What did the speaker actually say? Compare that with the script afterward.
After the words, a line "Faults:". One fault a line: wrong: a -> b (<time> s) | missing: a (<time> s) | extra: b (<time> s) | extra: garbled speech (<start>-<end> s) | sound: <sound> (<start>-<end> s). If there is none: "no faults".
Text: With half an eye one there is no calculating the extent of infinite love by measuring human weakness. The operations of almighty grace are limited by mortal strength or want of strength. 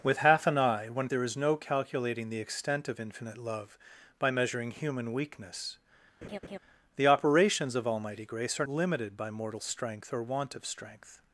With half an eye one there is no calculating the extent of infinite love by measuring human weakness. The operations of almighty grace are limited by mortal strength or want of strength.
Faults:
sound: laugh (6.2-6.6 s)